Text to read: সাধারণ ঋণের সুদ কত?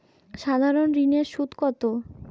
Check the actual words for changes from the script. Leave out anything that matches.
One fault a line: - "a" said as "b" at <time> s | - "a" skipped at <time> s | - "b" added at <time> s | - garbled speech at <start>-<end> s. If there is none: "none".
none